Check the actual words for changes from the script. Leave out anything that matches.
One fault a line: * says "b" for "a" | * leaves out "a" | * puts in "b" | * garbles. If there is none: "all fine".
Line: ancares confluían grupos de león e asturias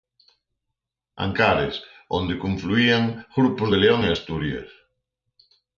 * puts in "onde"